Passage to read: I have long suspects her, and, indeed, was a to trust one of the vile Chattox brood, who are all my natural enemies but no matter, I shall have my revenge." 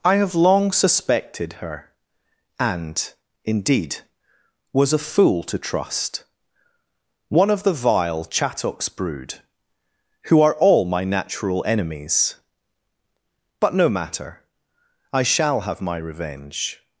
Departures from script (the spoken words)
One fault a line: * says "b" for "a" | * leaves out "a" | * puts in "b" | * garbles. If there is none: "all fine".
* says "suspected" for "suspects"
* puts in "fool"